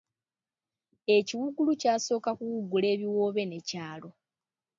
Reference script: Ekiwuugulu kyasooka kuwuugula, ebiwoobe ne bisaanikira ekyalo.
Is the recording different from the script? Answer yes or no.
yes